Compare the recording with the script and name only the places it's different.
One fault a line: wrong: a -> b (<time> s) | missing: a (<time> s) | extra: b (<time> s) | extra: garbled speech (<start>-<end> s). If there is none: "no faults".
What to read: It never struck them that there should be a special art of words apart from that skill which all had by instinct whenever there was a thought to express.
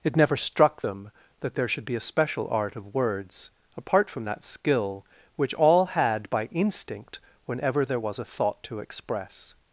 no faults